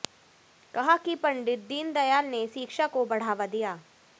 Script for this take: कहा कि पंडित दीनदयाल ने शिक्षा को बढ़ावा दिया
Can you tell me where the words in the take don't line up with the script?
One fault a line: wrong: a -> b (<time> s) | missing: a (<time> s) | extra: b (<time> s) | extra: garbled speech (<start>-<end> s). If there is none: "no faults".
no faults